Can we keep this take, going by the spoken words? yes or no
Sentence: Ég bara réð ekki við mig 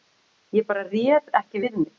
yes